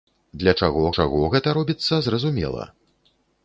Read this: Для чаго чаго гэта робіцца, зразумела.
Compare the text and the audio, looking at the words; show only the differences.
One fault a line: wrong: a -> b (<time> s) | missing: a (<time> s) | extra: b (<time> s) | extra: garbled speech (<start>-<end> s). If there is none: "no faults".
no faults